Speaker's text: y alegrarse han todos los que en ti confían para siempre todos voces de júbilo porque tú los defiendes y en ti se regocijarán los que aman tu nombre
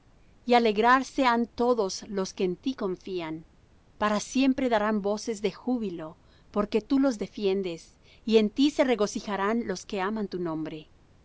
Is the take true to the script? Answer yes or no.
no